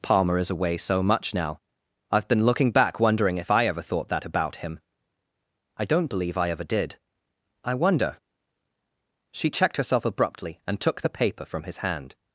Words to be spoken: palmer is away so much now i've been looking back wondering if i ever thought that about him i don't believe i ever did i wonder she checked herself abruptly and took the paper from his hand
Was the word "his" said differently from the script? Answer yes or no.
no